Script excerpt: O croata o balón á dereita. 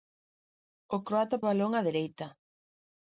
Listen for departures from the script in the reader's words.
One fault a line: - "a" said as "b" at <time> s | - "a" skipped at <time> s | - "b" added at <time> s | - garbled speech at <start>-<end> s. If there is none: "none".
none